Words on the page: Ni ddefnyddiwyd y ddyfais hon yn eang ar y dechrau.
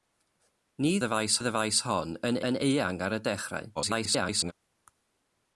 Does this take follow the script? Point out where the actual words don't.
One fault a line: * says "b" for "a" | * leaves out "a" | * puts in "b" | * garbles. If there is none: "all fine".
* says "ddyfais" for "ddefnyddiwyd"
* puts in "yn"
* garbles